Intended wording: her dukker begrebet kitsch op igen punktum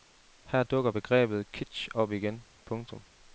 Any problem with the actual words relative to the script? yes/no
no